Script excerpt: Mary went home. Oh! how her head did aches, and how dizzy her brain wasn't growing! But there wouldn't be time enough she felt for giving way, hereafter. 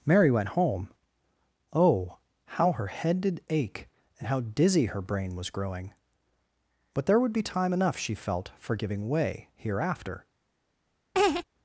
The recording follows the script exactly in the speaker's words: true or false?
false